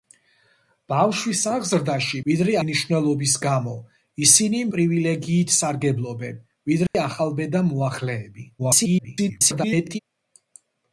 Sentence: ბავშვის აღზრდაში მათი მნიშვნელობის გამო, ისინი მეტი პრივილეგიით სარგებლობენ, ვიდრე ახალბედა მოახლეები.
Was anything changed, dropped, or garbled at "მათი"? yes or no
yes